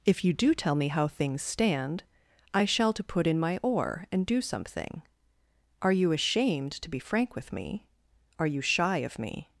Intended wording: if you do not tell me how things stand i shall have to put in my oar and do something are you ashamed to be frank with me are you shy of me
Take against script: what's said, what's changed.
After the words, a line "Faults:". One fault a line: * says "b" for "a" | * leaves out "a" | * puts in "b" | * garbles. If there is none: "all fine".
if you do tell me how things stand i shall to put in my oar and do something are you ashamed to be frank with me are you shy of me
Faults:
* leaves out "not"
* leaves out "have"